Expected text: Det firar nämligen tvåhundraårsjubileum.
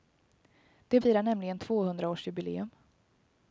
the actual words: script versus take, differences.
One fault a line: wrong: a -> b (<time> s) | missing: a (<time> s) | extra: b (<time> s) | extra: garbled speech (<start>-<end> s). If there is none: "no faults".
no faults